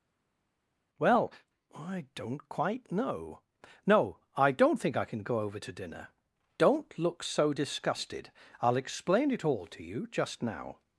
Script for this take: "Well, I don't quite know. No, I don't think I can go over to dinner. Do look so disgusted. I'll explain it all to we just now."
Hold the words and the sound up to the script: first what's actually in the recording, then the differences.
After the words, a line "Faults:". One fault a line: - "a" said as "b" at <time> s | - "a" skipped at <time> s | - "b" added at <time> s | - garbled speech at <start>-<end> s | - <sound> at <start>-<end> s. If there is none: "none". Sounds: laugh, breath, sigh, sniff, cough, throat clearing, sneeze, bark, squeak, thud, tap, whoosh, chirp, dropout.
"Well, I don't quite know. No, I don't think I can go over to dinner. Don't look so disgusted. I'll explain it all to you just now."
Faults:
- "Do" said as "Don't" at 6.6 s
- "we" said as "you" at 9.8 s